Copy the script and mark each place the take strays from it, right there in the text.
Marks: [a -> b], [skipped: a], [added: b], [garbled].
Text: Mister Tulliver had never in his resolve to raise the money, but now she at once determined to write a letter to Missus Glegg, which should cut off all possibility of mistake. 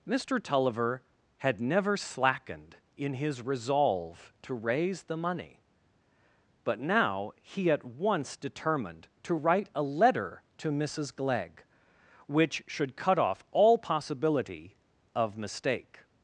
Mister Tulliver had never [added: slackened] in his resolve to raise the money, but now [she -> he] at once determined to write a letter to Missus Glegg, which should cut off all possibility of mistake.